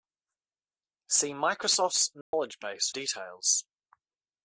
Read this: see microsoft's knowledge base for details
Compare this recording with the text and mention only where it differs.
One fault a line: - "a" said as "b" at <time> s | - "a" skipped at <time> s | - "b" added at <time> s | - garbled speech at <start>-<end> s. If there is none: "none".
- "for" skipped at 2.9 s